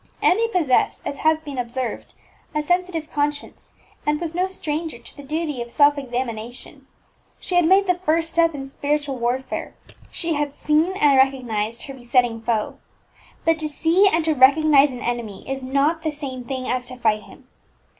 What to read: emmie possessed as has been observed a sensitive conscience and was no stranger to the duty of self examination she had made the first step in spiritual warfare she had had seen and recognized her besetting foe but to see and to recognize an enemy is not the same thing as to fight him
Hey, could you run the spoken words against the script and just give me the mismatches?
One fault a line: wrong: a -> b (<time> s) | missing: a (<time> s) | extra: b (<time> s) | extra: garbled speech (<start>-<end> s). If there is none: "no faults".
missing: had (10.6 s)